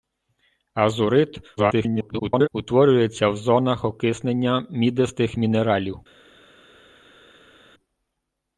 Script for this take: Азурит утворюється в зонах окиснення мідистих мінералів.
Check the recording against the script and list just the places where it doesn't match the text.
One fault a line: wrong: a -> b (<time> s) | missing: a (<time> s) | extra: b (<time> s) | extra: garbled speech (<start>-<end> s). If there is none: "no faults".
extra: garbled speech (1.6-2.5 s)